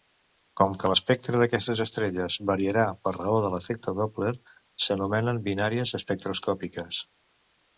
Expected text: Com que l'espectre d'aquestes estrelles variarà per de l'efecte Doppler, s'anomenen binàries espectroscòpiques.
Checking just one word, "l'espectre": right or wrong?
right